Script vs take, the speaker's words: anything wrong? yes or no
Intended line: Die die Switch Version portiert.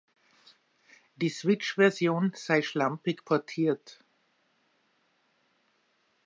yes